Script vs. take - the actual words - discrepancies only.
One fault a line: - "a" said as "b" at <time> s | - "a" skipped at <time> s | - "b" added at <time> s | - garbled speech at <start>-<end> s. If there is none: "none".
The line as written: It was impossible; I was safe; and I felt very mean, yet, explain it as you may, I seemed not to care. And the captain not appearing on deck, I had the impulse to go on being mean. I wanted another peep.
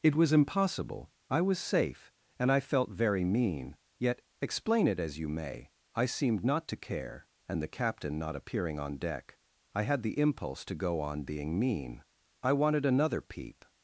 none